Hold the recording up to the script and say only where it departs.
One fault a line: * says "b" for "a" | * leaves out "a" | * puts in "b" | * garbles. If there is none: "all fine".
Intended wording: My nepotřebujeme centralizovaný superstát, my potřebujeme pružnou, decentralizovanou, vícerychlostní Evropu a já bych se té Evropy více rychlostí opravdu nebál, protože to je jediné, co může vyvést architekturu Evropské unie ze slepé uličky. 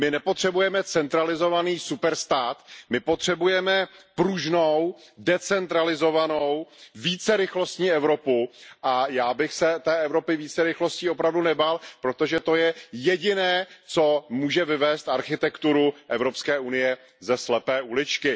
all fine